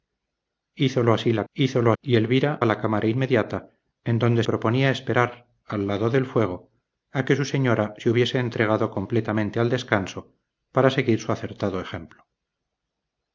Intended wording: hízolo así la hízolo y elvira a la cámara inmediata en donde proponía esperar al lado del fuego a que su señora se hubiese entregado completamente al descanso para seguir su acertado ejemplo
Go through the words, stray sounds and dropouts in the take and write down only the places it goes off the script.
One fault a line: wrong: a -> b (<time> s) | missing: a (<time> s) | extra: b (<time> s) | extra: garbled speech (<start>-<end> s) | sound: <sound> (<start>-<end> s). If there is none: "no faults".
no faults